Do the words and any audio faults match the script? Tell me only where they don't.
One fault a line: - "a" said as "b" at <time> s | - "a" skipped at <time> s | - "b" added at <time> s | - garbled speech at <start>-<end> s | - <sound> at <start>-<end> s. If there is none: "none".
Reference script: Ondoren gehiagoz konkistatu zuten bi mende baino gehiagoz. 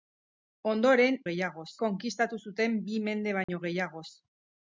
- dropout at 3.4-3.5 s